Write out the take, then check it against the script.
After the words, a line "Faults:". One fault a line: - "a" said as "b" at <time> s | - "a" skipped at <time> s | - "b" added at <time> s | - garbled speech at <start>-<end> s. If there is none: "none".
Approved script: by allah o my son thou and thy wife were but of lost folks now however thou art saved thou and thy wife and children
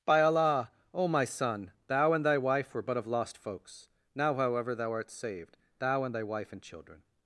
by allah o my son thou and thy wife were but of lost folks now however thou art saved thou and thy wife and children
Faults:
none